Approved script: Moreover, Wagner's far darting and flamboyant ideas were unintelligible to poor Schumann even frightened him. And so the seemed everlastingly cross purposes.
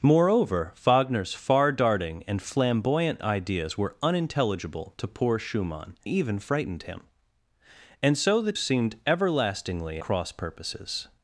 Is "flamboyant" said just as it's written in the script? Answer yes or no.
yes